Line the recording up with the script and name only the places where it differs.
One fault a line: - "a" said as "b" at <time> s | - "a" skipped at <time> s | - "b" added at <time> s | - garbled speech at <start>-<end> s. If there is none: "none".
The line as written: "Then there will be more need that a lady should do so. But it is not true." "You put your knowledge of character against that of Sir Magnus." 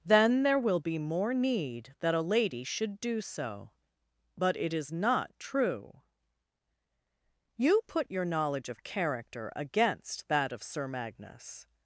none